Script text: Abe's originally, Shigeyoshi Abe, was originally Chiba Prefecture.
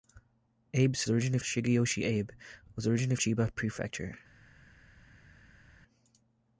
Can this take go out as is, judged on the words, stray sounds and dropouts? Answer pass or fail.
pass